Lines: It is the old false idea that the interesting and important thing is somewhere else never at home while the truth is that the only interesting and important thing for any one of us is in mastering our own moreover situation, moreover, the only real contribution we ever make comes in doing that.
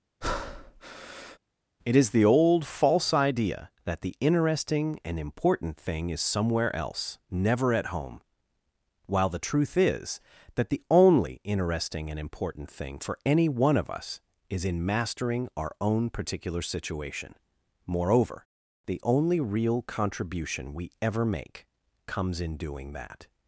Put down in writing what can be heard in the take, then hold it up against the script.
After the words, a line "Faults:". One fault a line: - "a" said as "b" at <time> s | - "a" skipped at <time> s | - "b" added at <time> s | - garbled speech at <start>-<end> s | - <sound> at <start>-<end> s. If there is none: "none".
It is the old false idea that the interesting and important thing is somewhere else never at home while the truth is that the only interesting and important thing for any one of us is in mastering our own particular situation, moreover, the only real contribution we ever make comes in doing that.
Faults:
- breath at 0.2-1.4 s
- "moreover" said as "particular" at 16.1 s